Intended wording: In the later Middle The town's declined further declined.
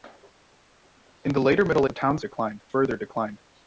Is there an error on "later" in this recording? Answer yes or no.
no